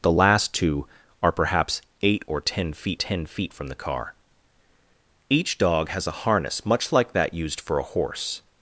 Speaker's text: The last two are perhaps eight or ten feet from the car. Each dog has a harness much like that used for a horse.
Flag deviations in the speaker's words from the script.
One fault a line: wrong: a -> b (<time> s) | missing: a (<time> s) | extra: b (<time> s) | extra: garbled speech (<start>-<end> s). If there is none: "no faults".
extra: ten feet (2.9 s)